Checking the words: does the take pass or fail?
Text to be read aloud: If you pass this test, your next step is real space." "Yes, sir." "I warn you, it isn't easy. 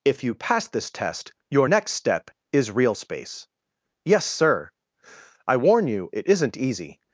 pass